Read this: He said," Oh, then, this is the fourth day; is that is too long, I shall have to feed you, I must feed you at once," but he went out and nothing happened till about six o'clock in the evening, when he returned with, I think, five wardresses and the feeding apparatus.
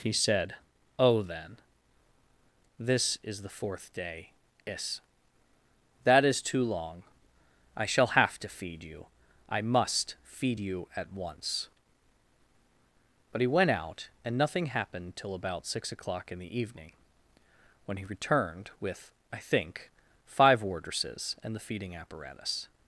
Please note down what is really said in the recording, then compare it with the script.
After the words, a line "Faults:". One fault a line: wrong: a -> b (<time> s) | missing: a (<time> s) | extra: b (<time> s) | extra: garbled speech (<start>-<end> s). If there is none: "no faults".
He said," Oh, then, this is the fourth day; is that is too long, I shall have to feed you, I must feed you at once," but he went out and nothing happened till about six o'clock in the evening, when he returned with, I think, five wardresses and the feeding apparatus.
Faults:
no faults